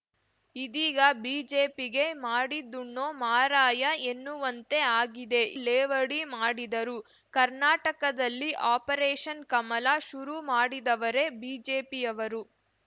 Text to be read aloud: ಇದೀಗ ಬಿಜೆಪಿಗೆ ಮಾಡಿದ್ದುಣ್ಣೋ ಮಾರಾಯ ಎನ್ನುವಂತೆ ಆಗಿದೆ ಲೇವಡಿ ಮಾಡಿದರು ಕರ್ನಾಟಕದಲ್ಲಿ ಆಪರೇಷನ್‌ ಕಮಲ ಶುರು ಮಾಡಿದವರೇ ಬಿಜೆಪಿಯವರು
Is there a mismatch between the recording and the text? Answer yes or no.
no